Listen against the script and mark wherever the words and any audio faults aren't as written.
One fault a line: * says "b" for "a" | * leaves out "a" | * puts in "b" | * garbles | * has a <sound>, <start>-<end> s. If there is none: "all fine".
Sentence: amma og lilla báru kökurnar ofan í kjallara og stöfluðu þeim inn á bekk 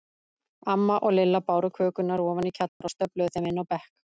* has a dropout, 2.7-2.8 s